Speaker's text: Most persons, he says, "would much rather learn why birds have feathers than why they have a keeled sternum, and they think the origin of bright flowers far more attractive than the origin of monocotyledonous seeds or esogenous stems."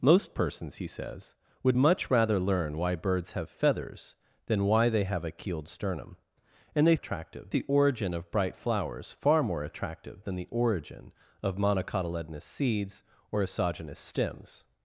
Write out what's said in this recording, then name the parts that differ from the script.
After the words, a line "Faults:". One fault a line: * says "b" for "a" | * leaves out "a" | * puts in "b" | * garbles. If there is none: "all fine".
Most persons, he says, "would much rather learn why birds have feathers than why they have a keeled sternum, and they attractive the origin of bright flowers far more attractive than the origin of monocotyledonous seeds or esogenous stems."
Faults:
* says "attractive" for "think"